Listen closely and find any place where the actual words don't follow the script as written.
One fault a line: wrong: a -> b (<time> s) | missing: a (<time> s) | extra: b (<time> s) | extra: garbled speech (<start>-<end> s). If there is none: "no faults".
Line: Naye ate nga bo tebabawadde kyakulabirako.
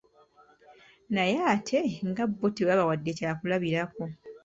no faults